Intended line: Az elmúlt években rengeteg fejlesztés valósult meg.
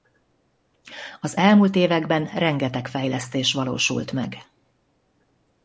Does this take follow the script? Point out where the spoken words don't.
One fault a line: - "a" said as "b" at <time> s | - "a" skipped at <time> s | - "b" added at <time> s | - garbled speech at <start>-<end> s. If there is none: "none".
none